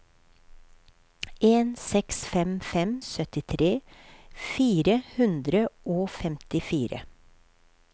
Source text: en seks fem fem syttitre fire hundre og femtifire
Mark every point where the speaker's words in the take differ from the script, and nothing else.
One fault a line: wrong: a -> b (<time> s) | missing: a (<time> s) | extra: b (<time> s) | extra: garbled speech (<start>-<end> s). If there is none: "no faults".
no faults